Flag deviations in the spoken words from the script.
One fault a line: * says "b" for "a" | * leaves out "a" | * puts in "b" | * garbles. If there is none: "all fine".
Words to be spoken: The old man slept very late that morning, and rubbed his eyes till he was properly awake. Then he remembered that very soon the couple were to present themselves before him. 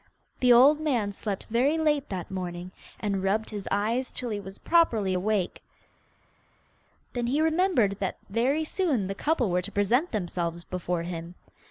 all fine